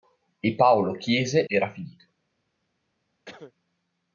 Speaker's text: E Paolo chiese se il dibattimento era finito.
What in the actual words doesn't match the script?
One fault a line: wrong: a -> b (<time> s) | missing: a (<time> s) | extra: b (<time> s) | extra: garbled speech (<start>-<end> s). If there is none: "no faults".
missing: se il dibattimento (1.5 s)